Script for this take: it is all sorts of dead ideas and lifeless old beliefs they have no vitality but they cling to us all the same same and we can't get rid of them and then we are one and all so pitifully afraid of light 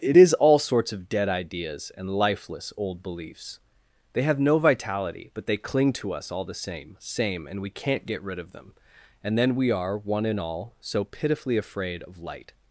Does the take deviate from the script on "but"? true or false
false